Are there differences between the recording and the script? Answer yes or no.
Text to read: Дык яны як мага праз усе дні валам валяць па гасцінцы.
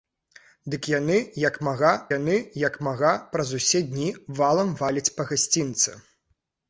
yes